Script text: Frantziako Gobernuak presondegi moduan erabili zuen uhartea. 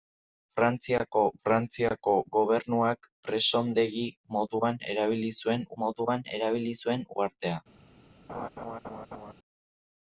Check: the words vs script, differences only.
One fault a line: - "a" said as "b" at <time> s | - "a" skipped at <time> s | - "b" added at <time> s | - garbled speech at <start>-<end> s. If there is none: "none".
- "frantziako" added at 1.5 s
- "moduan erabili zuen" added at 5.8 s